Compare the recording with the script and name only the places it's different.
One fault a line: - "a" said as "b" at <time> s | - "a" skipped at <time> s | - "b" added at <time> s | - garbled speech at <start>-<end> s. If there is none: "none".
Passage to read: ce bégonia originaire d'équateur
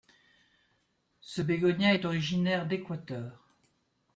- "est" added at 1.9 s